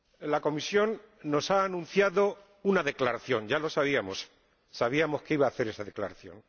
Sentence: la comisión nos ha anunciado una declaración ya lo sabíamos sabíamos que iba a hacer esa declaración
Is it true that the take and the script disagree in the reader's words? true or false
false